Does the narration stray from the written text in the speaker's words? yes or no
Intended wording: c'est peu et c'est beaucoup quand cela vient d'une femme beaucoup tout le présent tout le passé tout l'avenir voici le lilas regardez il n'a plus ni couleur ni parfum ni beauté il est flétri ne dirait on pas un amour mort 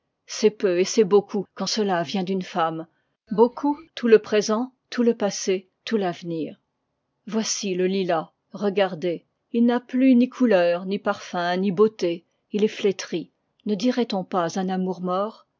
no